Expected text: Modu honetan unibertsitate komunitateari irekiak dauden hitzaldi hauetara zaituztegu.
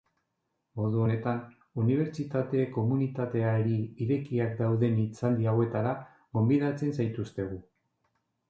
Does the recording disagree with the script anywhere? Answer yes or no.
yes